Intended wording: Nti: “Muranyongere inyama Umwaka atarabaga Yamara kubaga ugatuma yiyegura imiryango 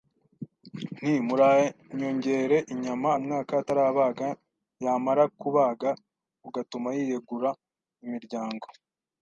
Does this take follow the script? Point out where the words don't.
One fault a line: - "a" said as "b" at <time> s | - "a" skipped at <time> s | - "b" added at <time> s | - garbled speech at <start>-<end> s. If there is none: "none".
none